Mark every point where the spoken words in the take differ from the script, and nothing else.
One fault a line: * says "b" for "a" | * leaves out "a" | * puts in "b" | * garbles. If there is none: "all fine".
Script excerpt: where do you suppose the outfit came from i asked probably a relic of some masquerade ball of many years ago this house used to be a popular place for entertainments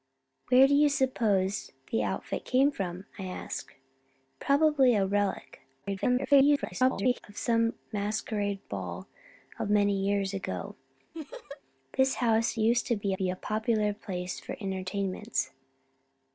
* garbles
* puts in "be"